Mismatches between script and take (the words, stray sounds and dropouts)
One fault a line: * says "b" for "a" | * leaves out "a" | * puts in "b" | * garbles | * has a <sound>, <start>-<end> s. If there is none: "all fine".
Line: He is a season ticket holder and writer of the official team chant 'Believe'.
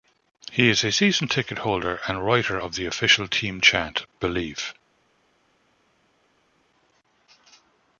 all fine